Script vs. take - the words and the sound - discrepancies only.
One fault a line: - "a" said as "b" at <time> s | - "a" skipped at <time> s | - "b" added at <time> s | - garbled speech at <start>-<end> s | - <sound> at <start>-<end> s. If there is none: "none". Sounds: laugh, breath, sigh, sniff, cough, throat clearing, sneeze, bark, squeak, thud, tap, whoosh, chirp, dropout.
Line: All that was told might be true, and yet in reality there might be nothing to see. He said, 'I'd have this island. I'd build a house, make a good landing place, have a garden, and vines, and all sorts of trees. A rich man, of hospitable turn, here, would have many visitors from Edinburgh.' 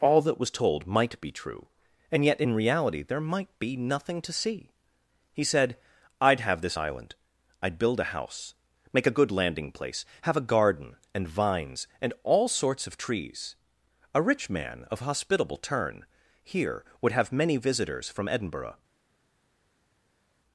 none